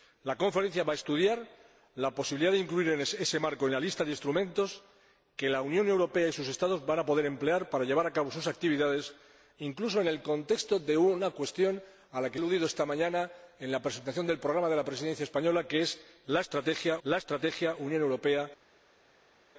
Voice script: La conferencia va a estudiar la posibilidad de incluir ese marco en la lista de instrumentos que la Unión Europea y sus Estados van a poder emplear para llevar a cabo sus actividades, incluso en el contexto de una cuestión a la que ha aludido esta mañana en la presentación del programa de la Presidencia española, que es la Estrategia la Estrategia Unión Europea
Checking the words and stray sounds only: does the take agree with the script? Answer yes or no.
yes